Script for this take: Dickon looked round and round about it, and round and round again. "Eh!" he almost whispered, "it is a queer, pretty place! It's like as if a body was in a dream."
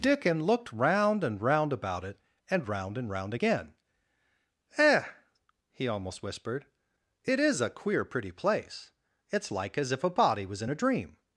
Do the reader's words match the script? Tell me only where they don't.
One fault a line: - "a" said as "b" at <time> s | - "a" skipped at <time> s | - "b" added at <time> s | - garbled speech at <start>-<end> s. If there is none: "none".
none